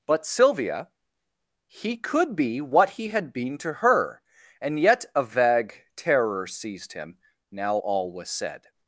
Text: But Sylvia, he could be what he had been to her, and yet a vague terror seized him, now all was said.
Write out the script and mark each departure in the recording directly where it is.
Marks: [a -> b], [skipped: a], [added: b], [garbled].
But Sylvia, he could be what he had been to her, and yet a vague terror seized him, now all was said.